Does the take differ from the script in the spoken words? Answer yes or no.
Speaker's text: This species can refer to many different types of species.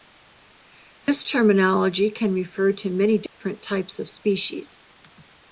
yes